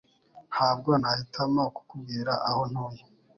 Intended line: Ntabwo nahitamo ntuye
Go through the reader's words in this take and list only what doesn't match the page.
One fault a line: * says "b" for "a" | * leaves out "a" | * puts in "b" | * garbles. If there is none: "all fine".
* puts in "kukubwira aho"